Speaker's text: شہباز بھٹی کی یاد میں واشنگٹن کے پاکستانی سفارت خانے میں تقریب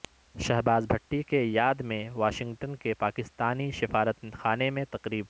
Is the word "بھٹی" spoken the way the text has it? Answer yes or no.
yes